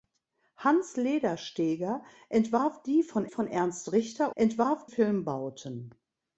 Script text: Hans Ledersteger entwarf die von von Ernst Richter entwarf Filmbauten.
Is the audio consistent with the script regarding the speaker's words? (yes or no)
yes